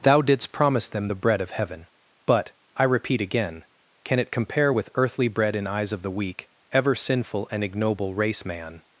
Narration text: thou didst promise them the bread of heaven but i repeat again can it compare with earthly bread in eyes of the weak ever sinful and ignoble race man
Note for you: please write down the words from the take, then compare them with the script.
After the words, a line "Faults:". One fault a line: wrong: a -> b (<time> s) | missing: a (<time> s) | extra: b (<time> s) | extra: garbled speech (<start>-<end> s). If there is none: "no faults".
thou didst promise them the bread of heaven but i repeat again can it compare with earthly bread in eyes of the weak ever sinful and ignoble race man
Faults:
no faults